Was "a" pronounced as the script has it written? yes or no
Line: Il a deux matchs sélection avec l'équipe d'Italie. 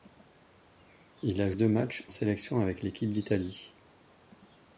yes